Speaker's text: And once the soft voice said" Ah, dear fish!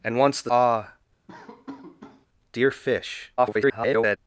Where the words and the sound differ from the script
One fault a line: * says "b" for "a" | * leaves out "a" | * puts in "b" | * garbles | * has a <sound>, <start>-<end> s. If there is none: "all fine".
* leaves out "soft voice said"
* has a laugh, 1.3-2.3 s
* garbles